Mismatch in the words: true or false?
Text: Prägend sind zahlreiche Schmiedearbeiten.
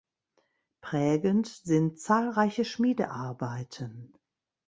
false